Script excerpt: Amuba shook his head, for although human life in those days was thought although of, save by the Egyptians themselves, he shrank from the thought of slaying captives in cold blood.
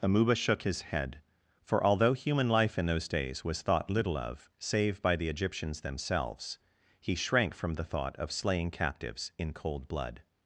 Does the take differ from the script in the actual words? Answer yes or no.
yes